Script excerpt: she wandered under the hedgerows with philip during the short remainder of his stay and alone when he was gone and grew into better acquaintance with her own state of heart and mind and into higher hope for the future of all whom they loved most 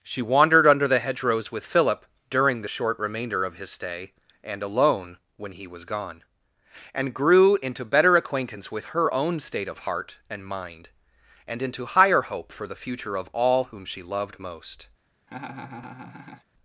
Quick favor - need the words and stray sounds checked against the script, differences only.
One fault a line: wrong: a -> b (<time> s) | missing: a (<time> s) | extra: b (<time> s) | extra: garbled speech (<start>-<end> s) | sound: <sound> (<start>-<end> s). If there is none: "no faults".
wrong: they -> she (13.9 s)
sound: laugh (15.3-16.4 s)